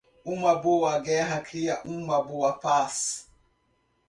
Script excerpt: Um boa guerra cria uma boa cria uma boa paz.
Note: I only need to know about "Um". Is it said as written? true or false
false